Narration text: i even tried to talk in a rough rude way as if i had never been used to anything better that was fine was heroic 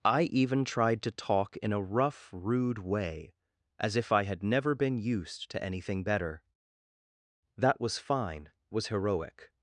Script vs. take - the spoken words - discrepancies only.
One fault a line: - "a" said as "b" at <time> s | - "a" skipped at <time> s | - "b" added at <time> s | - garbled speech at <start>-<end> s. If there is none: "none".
none